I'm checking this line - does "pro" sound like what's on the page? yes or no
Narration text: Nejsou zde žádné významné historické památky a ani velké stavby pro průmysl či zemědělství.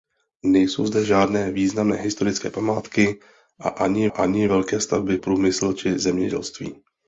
no